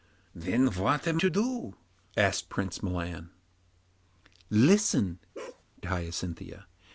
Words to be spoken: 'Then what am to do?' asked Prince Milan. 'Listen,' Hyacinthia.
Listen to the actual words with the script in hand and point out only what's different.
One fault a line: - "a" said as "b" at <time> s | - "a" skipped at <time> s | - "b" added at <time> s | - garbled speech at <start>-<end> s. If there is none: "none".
none